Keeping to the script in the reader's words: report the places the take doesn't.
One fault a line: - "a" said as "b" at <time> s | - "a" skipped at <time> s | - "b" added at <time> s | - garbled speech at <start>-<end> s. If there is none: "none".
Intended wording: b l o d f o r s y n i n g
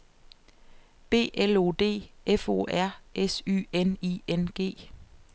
none